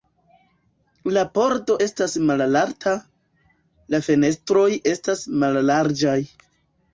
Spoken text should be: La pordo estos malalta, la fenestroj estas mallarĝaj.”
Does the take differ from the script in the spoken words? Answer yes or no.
yes